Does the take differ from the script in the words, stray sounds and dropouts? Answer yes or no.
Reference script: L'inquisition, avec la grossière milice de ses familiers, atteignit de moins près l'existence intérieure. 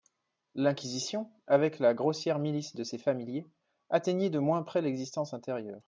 no